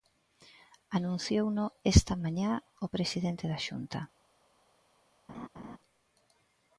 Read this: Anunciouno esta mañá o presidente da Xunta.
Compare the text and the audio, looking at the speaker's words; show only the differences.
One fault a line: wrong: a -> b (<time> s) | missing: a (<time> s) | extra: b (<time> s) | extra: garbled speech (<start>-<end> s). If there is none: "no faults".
no faults